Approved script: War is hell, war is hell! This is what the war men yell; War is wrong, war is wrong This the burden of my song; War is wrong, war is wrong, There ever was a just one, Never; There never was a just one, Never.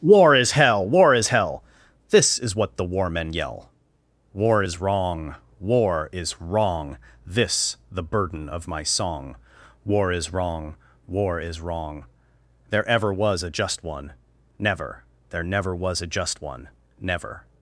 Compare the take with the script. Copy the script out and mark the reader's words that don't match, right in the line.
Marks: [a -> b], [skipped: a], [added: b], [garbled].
War is hell, war is hell! This is what the war men yell; War is wrong, war is wrong This the burden of my song; War is wrong, war is wrong, There ever was a just one, Never; There never was a just one, Never.